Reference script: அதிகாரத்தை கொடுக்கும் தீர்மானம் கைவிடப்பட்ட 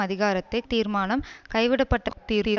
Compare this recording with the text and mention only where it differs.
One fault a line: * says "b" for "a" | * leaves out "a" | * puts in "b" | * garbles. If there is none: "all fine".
* leaves out "கொடுக்கும்"
* garbles